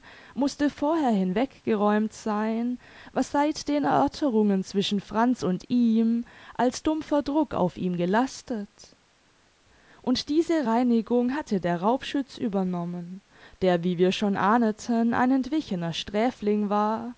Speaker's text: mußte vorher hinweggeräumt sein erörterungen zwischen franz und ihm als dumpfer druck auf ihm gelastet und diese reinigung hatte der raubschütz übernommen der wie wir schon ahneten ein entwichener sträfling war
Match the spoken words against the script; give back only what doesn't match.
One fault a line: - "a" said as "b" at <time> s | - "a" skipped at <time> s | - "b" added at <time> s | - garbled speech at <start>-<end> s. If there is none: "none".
- "was seit den" added at 3.1 s